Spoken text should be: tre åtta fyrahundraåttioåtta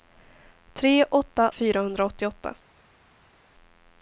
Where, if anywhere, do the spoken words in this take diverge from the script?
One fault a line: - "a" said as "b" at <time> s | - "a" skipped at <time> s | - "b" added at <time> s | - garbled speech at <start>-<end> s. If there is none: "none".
none